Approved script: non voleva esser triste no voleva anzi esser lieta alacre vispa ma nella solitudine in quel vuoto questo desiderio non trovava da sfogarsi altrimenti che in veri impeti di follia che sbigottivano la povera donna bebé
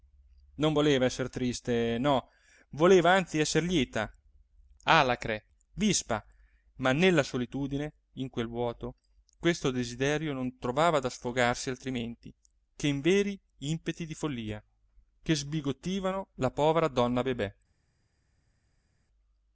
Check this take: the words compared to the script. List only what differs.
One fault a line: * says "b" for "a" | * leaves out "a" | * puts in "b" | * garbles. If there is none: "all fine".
all fine